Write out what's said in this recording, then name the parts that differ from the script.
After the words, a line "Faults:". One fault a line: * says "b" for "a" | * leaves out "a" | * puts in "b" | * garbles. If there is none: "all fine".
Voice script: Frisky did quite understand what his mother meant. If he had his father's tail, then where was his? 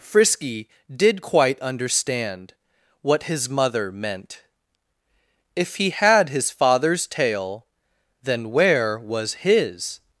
Frisky did quite understand what his mother meant. If he had his father's tail, then where was his?
Faults:
all fine